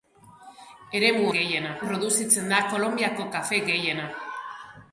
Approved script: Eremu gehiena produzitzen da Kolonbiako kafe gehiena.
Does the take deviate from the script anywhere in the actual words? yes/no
no